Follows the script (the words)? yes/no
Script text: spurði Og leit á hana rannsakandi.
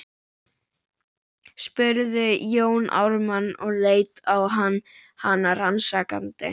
no